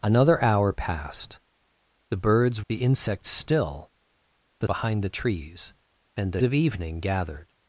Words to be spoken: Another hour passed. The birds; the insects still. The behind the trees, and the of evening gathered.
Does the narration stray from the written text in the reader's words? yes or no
no